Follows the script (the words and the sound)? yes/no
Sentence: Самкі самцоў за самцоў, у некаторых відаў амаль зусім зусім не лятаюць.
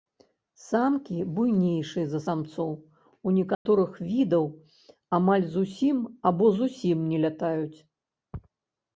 no